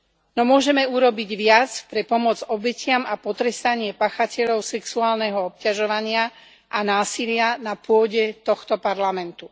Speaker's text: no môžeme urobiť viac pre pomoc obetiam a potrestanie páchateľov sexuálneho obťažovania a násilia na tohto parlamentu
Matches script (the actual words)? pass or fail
fail